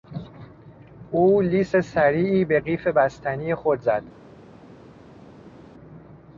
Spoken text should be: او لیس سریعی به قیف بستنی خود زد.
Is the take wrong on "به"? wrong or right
right